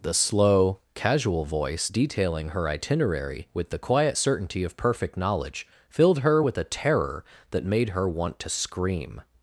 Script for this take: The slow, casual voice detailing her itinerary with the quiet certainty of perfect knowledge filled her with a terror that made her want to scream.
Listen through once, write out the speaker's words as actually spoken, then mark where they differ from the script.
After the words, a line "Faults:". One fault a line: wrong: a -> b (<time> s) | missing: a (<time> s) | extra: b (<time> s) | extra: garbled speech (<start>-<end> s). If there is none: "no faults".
The slow, casual voice detailing her itinerary with the quiet certainty of perfect knowledge filled her with a terror that made her want to scream.
Faults:
no faults